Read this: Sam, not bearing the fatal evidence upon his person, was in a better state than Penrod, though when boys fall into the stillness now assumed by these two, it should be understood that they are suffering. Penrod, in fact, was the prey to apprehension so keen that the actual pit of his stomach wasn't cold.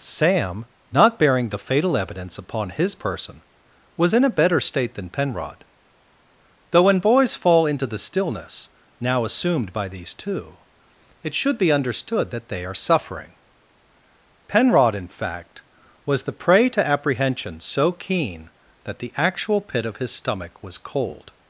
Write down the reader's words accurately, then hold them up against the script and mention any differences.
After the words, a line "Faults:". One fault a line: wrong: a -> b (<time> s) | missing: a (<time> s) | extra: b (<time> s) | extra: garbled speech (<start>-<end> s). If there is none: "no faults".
Sam, not bearing the fatal evidence upon his person, was in a better state than Penrod, though when boys fall into the stillness now assumed by these two, it should be understood that they are suffering. Penrod, in fact, was the prey to apprehension so keen that the actual pit of his stomach was cold.
Faults:
wrong: wasn't -> was (20.6 s)